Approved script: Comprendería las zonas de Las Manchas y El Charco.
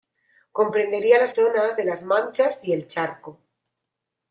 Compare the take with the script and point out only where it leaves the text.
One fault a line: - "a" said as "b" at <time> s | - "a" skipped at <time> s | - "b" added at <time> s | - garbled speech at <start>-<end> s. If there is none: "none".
none